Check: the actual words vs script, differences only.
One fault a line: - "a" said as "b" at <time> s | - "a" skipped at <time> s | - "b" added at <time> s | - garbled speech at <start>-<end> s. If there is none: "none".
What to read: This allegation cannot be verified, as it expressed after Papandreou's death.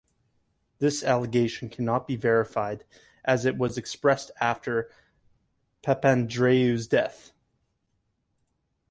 - "was" added at 3.6 s